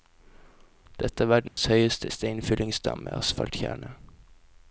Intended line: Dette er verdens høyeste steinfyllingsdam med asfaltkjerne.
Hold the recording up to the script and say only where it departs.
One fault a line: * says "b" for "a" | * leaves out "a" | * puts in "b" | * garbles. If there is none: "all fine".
all fine